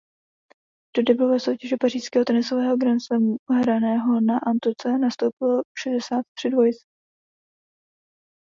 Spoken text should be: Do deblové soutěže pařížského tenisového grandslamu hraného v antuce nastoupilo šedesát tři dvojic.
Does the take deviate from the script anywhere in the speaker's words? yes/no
yes